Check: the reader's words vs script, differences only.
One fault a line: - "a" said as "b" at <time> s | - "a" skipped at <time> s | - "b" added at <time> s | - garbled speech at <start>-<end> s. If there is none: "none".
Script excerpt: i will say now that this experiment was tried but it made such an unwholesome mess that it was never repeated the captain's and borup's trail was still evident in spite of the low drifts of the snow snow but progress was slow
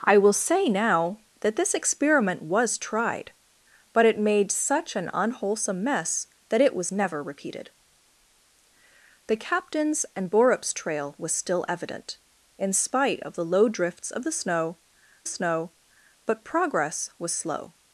none